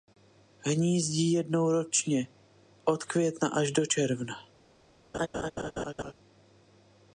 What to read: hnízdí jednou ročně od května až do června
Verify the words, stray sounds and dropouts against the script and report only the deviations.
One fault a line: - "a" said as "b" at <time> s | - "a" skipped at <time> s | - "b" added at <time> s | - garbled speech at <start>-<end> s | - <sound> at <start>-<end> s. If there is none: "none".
- laugh at 5.1-6.1 s